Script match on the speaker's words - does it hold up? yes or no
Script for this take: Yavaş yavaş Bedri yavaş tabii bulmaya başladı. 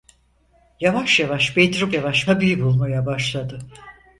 yes